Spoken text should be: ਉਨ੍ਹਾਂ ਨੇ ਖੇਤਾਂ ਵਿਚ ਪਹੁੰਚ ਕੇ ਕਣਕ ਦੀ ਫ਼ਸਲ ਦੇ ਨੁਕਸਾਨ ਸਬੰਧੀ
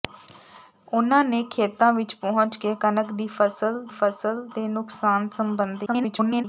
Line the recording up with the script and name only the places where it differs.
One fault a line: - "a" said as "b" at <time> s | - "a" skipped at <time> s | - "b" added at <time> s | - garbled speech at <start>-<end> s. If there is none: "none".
- "ਫ਼ਸਲ" added at 3.9 s
- garbled speech at 5.9-6.4 s